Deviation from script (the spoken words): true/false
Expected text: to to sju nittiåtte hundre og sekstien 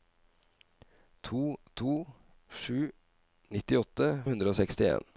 false